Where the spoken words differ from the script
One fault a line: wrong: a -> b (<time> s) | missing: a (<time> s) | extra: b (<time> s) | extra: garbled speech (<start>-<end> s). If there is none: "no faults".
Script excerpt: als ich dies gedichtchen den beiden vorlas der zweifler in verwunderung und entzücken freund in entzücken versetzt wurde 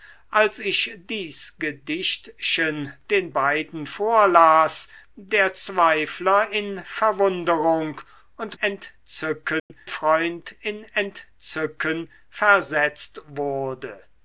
no faults